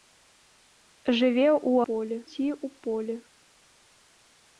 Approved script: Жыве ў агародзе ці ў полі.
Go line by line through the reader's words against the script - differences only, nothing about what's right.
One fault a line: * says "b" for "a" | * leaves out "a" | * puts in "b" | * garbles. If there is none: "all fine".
* says "полі" for "агародзе"